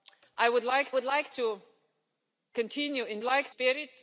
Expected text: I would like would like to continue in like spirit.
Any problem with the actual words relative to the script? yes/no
no